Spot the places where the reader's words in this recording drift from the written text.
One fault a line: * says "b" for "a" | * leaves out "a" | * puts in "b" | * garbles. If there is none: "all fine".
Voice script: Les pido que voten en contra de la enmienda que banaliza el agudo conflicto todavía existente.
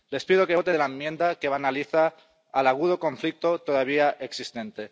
* leaves out "en contra"